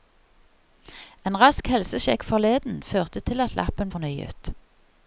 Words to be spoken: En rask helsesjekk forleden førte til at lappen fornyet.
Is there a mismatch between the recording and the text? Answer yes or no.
no